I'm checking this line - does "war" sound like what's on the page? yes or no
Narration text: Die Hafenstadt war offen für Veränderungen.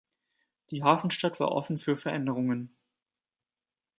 yes